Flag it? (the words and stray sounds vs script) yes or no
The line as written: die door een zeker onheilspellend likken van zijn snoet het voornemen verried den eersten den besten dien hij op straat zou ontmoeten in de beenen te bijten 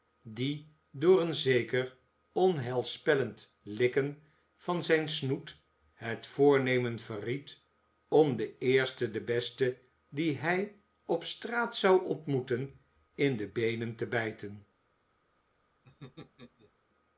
yes